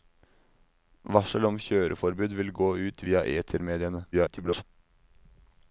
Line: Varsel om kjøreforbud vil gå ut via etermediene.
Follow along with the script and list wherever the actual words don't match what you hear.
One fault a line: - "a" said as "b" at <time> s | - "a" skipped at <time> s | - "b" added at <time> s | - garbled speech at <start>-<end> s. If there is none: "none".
- garbled speech at 4.1-4.6 s